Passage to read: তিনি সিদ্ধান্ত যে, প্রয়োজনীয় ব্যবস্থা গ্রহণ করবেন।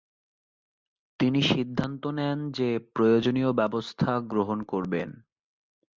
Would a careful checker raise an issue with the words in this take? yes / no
yes